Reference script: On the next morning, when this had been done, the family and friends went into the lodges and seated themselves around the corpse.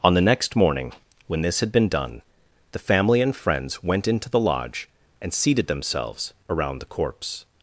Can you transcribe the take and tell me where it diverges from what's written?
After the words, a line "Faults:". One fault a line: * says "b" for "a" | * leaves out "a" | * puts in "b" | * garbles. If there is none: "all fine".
On the next morning, when this had been done, the family and friends went into the lodge and seated themselves around the corpse.
Faults:
* says "lodge" for "lodges"